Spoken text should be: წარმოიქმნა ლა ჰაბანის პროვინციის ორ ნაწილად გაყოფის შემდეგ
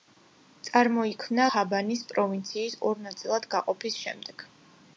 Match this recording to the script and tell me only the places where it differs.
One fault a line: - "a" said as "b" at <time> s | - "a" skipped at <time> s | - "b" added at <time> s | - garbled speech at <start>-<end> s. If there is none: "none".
- "ლა" skipped at 1.4 s